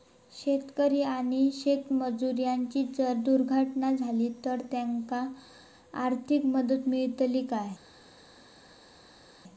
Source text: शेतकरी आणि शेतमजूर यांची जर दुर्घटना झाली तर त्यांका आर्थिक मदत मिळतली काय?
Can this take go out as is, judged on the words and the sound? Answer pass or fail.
pass